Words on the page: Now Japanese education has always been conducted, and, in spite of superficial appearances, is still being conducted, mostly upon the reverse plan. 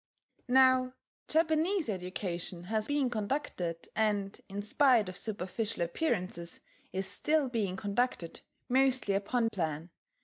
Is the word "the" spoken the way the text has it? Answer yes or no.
no